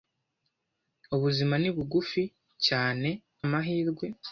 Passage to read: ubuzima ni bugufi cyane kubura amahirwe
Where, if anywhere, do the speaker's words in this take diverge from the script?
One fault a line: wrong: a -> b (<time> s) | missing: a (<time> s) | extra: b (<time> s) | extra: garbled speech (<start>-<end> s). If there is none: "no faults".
missing: kubura (3.1 s)